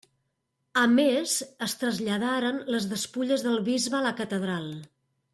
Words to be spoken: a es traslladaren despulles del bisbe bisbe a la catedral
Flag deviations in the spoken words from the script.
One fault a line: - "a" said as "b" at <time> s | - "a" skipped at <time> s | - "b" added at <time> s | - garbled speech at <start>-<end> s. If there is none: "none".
- "més" added at 0.9 s
- "les" added at 2.8 s
- "bisbe" skipped at 4.0 s